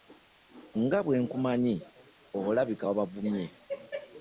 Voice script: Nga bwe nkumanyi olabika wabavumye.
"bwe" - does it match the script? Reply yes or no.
yes